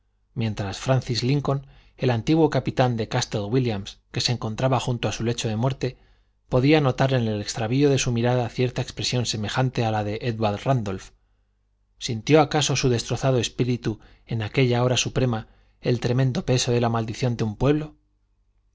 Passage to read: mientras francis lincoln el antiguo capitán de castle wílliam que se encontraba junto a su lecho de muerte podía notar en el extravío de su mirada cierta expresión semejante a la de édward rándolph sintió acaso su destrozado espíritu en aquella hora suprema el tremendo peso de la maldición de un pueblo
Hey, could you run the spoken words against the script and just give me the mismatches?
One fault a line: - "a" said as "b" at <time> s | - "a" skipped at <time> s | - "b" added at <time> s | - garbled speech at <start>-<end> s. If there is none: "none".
none